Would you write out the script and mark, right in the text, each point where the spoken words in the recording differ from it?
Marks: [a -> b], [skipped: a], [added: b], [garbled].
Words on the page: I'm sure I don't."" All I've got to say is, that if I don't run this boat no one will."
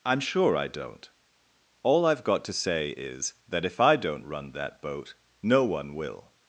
I'm sure I don't."" All I've got to say is, that if I don't run [this -> that] boat no one will."